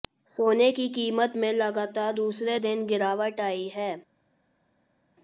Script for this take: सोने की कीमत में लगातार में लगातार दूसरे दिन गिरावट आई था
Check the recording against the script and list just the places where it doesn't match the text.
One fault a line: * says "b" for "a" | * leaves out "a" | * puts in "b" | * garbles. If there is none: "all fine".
* leaves out "में लगातार"
* says "है" for "था"